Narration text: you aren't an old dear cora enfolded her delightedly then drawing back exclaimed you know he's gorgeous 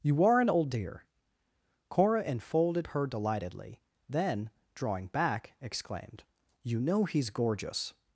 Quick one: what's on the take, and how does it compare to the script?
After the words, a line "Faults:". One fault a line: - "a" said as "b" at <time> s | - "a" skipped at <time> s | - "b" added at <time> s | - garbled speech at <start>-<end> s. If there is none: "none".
you are an old dear cora enfolded her delightedly then drawing back exclaimed you know he's gorgeous
Faults:
- "aren't" said as "are" at 0.2 s